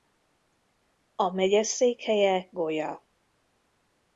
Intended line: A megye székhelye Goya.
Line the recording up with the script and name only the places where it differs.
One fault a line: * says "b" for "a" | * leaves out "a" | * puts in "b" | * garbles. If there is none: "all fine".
all fine